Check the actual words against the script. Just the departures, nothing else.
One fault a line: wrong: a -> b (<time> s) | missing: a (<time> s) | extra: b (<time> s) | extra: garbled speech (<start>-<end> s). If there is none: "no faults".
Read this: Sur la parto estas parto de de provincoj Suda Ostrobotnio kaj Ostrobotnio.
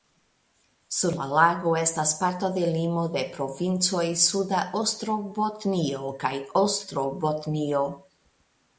wrong: parto -> lago (1.3 s)
extra: limo (2.8 s)